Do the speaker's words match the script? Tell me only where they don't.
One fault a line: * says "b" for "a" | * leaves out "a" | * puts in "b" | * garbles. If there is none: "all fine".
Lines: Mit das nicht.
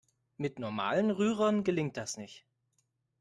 * puts in "normalen Rührern gelingt"